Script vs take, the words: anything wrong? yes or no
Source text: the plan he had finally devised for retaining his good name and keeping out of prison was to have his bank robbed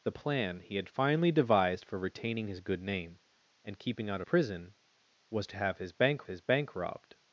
yes